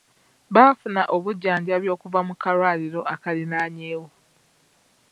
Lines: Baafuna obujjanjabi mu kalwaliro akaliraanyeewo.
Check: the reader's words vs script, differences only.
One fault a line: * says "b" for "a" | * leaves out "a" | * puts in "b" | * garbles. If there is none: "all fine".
* puts in "okuva"